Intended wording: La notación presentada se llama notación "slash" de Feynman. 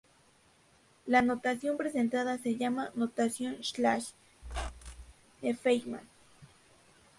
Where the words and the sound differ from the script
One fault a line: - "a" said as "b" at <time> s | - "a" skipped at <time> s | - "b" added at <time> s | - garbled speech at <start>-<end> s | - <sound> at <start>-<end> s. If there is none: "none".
- squeak at 4.4-5.1 s